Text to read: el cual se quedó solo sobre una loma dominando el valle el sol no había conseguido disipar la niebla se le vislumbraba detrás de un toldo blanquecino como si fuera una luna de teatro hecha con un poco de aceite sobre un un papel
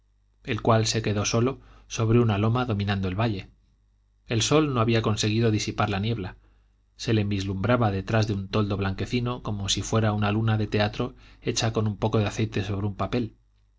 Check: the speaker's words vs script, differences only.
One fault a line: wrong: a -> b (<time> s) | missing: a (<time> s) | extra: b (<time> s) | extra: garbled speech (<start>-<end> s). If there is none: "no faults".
missing: un (13.0 s)